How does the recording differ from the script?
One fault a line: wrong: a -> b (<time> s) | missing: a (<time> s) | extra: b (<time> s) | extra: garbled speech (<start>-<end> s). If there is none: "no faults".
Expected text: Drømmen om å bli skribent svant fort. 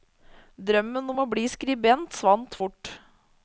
no faults